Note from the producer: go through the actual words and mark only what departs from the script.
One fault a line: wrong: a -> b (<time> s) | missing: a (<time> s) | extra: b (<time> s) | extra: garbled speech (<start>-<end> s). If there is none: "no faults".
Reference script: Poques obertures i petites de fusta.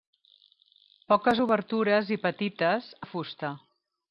no faults